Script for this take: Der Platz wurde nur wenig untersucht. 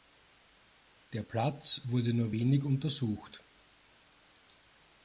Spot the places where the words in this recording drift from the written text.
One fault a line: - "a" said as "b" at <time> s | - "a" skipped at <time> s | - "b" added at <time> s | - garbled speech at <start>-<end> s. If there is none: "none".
none